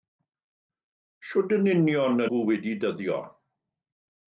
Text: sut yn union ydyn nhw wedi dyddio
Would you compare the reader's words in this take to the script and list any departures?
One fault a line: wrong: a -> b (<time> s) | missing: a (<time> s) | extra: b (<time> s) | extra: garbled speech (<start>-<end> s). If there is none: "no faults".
missing: ydyn (2.2 s)